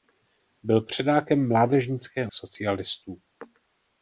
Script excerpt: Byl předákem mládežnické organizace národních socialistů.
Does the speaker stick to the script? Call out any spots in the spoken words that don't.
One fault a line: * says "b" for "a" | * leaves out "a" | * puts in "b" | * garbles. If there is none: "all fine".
* leaves out "organizace národních"